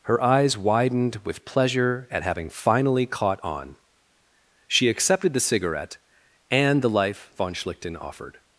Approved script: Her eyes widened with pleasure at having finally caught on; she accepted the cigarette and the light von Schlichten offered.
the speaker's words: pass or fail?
fail